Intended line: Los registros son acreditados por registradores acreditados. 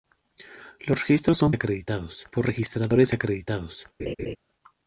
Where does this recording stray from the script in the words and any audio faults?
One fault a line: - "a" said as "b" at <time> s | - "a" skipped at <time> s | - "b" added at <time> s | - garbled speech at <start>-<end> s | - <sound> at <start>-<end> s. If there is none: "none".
- laugh at 4.0-4.4 s